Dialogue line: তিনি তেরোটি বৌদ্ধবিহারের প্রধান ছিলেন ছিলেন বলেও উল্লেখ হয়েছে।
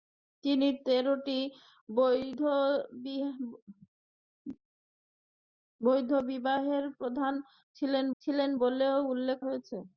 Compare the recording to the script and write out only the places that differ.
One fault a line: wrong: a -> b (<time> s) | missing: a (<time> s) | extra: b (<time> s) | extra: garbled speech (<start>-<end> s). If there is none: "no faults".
no faults